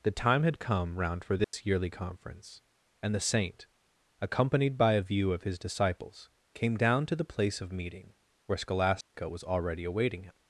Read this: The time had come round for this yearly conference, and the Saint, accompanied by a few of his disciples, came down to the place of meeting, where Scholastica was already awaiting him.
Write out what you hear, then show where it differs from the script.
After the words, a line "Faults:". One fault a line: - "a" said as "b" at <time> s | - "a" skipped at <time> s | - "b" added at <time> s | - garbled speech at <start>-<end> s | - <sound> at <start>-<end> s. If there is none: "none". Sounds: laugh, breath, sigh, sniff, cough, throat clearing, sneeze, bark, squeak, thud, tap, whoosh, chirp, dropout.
The time had come round for this yearly conference, and the Saint, accompanied by a view of his disciples, came down to the place of meeting, where Scholastica was already awaiting him.
Faults:
- dropout at 1.4-1.5 s
- "few" said as "view" at 5.0 s
- dropout at 9.0-9.1 s